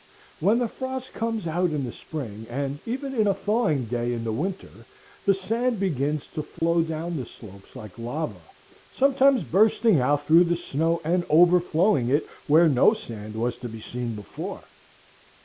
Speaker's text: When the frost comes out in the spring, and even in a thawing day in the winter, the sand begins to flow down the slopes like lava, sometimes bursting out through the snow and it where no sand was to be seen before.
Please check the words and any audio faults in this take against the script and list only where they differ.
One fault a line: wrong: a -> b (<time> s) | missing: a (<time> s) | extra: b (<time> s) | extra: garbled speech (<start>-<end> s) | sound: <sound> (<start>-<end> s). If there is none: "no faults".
sound: dropout (6.6-6.6 s)
extra: overflowing (11.3 s)